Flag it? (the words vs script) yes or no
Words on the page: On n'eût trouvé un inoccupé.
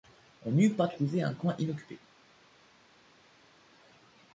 yes